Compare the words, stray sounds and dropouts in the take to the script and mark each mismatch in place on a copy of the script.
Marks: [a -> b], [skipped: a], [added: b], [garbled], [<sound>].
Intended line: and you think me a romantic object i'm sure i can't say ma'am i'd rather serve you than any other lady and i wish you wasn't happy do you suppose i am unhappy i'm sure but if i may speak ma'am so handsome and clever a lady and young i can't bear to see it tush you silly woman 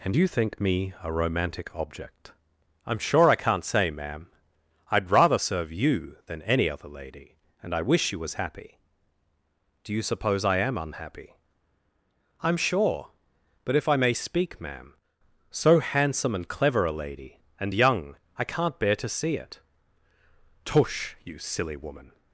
and you think me a romantic object i'm sure i can't say ma'am i'd rather serve you than any other lady and i wish you [wasn't -> was] happy do you suppose i am unhappy i'm sure but if i may speak ma'am so handsome and clever a lady and young i can't bear to see it tush you silly woman